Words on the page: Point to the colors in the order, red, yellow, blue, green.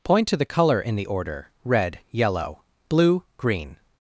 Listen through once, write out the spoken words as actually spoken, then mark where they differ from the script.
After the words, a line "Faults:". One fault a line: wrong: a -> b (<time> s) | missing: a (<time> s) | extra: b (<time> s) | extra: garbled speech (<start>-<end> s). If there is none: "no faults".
Point to the color in the order, red, yellow, blue, green.
Faults:
wrong: colors -> color (0.5 s)